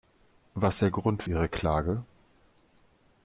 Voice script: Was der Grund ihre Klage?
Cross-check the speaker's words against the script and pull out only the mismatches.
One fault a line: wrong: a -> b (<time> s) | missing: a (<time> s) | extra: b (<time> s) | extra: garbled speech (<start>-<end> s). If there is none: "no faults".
no faults